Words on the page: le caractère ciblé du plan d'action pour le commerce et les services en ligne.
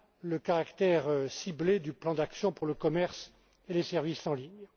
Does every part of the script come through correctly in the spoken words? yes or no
yes